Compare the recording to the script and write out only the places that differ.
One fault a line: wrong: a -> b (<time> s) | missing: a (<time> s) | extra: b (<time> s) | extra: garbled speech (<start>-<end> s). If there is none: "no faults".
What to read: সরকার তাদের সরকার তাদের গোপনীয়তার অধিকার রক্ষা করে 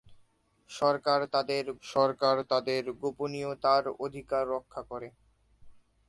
no faults